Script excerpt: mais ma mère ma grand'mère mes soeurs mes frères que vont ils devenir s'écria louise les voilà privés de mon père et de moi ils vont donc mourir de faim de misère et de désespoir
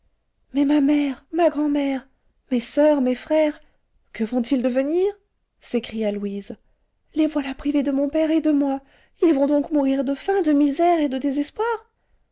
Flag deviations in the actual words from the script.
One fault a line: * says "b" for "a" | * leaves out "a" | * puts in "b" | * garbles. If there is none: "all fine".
all fine